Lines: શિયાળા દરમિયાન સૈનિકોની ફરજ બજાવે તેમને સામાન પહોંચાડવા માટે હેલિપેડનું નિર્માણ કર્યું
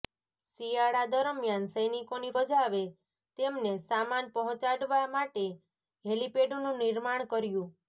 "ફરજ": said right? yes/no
no